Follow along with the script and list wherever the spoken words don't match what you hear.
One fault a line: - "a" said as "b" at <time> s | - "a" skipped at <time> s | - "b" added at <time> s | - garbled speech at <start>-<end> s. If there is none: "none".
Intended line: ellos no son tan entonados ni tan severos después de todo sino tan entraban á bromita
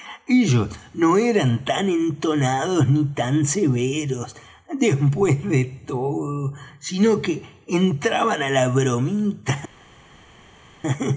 - "son" said as "eran" at 1.2 s
- "tan" said as "que" at 7.2 s
- "la" added at 8.5 s